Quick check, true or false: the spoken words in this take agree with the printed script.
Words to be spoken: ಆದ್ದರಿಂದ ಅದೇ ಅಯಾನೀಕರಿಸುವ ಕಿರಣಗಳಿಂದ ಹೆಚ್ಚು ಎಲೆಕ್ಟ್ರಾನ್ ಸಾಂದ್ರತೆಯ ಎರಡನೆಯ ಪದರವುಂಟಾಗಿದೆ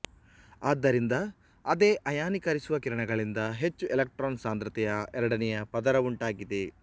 true